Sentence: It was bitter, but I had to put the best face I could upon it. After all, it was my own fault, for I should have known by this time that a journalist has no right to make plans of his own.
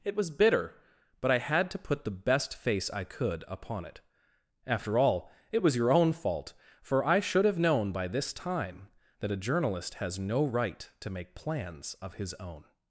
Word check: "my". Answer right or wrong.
wrong